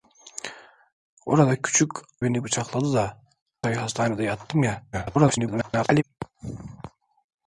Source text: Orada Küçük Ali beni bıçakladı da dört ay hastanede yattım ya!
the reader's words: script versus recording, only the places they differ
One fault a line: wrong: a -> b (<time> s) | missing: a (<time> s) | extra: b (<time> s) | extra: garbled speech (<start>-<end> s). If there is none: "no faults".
missing: Ali (1.9 s)
missing: dört (3.2 s)
extra: garbled speech (4.9-6.0 s)